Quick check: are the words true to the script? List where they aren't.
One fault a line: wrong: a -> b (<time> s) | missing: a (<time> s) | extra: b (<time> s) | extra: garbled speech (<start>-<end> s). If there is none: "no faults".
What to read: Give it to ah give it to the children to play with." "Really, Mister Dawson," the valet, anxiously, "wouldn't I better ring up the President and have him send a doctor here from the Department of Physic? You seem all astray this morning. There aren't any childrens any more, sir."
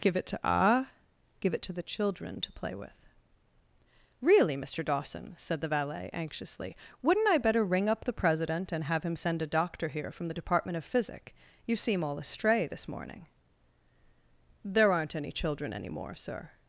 extra: said (5.4 s)
wrong: childrens -> children (15.3 s)